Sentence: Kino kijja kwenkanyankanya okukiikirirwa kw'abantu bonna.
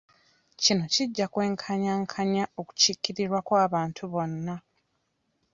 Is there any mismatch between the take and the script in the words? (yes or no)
no